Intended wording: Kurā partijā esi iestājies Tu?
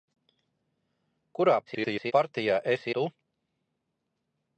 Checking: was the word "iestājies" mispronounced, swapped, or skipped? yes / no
yes